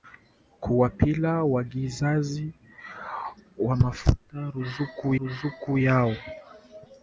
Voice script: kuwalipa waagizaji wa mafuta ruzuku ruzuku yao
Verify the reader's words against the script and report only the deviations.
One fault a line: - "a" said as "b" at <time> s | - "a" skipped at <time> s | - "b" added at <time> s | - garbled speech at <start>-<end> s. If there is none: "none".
none